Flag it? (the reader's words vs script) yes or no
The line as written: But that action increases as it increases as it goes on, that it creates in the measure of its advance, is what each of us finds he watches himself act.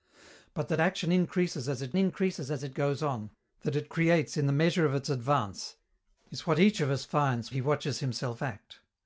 no